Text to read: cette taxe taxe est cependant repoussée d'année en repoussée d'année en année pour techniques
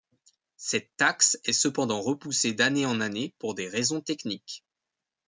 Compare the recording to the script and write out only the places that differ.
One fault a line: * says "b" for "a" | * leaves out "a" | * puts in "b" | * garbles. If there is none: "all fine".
* leaves out "taxe"
* says "année pour des raisons" for "repoussée d'année en année pour"